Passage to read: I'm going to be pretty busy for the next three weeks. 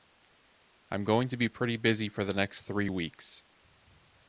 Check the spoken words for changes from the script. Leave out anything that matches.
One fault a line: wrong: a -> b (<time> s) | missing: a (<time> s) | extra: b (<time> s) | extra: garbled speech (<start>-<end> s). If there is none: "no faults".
no faults